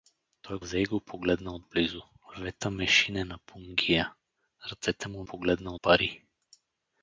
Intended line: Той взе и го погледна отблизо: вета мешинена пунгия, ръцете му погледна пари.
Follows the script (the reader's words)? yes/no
yes